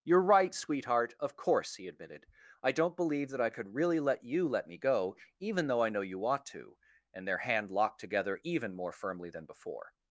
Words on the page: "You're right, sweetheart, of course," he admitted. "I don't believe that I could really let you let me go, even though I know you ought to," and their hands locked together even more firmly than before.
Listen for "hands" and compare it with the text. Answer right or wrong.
wrong